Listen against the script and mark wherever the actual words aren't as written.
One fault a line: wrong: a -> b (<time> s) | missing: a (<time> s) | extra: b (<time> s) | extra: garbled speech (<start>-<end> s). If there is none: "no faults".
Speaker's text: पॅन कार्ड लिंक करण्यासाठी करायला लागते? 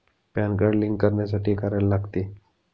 no faults